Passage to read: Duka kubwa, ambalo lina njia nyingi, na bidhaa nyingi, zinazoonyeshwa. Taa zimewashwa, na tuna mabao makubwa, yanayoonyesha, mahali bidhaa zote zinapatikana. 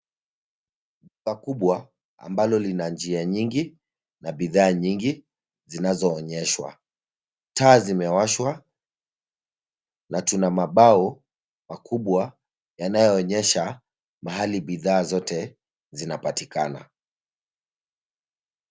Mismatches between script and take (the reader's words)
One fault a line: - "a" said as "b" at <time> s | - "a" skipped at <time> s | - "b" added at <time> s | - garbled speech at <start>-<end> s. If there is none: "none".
none